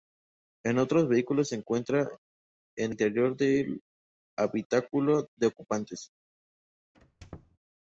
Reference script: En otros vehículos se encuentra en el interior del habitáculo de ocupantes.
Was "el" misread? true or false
true